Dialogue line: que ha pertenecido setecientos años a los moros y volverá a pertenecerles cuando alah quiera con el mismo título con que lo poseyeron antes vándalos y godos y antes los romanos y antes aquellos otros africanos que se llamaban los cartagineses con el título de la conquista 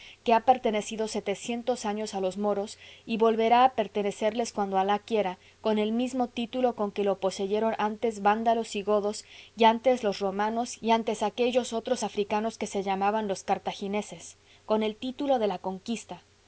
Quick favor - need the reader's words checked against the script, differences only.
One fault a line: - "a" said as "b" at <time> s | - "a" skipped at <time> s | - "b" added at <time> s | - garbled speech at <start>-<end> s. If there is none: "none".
none